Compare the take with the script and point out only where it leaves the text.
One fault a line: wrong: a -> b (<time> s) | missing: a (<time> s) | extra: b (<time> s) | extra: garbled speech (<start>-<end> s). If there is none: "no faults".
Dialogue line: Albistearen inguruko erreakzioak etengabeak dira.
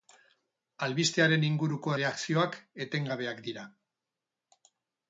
no faults